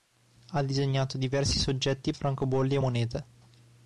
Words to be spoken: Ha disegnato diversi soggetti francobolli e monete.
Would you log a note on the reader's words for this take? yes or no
no